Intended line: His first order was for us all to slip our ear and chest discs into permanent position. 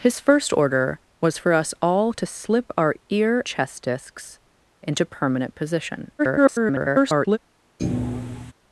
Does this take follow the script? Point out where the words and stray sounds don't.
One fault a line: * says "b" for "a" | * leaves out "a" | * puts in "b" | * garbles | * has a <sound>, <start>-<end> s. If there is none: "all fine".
* leaves out "and"
* garbles
* has a thud, 7.8-8.5 s